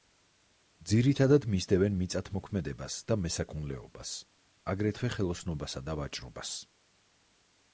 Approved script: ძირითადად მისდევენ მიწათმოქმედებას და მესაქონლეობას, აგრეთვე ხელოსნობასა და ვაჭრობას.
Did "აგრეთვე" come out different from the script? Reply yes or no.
no